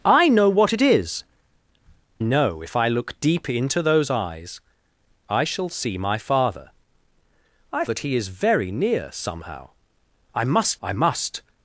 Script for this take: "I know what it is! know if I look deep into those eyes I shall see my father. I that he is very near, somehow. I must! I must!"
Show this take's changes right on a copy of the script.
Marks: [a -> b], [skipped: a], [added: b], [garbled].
"I know what it is! know if I look deep into those eyes I shall see my father. I that he is very near, somehow. I must! I must!"